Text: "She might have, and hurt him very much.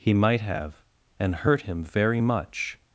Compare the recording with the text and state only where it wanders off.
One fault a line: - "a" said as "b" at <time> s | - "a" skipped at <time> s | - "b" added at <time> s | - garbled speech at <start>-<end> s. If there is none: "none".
- "She" said as "He" at 0.0 s